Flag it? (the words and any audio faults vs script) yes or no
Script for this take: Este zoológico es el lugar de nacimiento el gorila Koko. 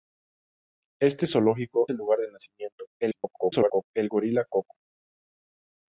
yes